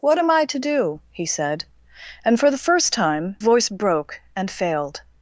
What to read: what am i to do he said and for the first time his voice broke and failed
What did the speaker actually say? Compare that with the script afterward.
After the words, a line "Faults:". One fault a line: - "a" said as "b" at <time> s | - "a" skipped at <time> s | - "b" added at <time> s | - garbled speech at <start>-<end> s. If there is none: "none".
what am i to do he said and for the first time voice broke and failed
Faults:
- "his" skipped at 3.4 s